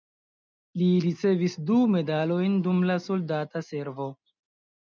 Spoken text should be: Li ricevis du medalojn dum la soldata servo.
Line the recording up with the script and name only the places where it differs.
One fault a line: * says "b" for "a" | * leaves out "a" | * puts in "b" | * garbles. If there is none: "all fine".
all fine